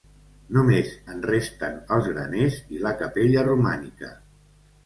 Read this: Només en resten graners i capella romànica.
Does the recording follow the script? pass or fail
fail